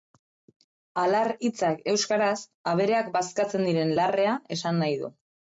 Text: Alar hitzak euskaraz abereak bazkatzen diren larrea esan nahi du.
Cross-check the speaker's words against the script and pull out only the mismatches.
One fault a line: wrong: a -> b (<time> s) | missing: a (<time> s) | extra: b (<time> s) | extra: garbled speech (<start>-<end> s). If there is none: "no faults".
no faults